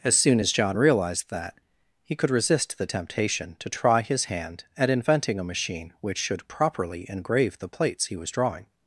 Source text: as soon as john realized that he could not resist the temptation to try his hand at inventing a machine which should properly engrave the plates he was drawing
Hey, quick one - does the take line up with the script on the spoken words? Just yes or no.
no